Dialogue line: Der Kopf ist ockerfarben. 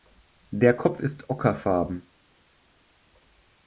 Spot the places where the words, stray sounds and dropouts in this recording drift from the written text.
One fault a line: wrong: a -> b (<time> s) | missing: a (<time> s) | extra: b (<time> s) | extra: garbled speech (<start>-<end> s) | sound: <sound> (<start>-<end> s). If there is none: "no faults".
no faults